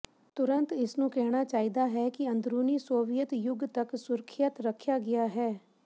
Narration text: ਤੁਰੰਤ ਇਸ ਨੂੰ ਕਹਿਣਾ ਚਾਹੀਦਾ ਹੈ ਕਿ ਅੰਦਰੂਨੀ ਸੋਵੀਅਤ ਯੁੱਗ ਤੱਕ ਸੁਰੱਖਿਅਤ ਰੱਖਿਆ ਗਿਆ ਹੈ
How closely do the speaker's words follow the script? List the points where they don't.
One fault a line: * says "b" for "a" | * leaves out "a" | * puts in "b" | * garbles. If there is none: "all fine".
all fine